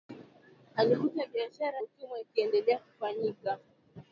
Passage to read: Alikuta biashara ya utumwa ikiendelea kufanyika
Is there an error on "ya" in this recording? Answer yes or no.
yes